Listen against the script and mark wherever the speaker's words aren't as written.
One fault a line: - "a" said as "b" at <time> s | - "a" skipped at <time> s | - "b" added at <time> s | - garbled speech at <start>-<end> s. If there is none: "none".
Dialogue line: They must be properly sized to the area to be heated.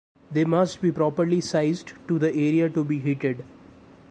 none